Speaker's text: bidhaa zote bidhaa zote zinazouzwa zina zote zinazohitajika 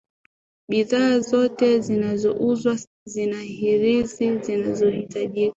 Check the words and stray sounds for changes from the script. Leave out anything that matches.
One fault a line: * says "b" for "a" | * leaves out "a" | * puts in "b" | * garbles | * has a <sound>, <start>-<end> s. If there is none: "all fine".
* leaves out "bidhaa zote"
* says "hirizi" for "zote"